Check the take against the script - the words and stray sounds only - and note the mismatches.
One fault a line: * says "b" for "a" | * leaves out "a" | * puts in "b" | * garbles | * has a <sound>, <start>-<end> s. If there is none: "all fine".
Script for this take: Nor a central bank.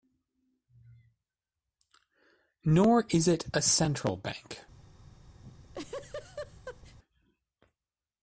* puts in "is it"
* has a laugh, 5.4-7.0 s